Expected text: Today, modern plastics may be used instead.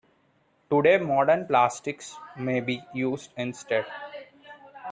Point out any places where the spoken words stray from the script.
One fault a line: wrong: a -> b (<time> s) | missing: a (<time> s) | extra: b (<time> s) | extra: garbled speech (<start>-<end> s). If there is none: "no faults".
no faults